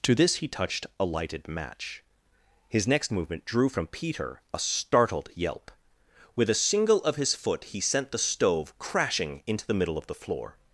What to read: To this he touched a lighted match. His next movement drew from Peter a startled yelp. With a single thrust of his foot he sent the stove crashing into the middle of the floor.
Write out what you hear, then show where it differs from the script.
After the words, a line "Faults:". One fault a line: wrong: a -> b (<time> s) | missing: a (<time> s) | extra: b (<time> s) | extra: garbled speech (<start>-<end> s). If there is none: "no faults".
To this he touched a lighted match. His next movement drew from Peter a startled yelp. With a single of his foot he sent the stove crashing into the middle of the floor.
Faults:
missing: thrust (7.0 s)